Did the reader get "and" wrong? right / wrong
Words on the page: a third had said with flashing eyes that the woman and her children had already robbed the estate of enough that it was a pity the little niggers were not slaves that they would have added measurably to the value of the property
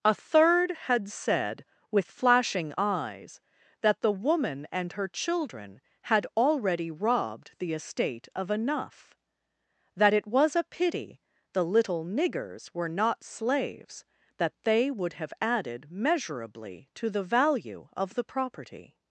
right